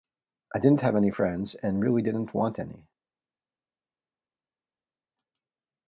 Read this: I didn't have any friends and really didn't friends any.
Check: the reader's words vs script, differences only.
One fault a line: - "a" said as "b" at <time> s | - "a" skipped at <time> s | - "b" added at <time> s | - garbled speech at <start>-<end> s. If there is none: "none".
- "friends" said as "want" at 2.3 s